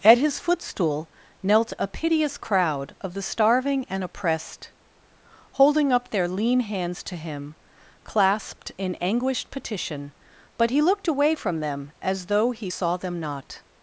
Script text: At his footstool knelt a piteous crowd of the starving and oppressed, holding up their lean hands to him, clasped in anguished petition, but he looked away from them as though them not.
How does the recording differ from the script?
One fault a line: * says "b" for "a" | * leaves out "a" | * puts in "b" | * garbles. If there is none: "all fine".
* puts in "he saw"